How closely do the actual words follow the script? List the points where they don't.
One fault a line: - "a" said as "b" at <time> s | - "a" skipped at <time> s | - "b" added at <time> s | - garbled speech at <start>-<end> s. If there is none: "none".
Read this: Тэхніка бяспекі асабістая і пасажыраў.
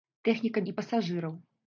- "бяспекі асабістая" skipped at 0.6 s